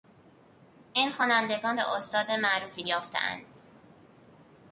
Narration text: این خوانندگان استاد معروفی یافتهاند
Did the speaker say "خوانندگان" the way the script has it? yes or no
yes